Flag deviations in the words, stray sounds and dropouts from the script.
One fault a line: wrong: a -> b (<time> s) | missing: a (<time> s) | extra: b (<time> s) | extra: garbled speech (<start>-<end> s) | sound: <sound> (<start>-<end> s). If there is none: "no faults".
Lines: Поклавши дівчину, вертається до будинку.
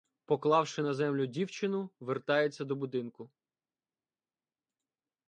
extra: на землю (0.8 s)